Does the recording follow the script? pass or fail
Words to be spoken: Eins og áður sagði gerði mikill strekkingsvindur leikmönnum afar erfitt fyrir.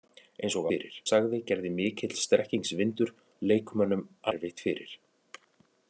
fail